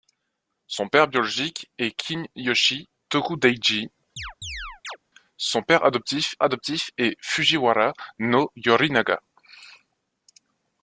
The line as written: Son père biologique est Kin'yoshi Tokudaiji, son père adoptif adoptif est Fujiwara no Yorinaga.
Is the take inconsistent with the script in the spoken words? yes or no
no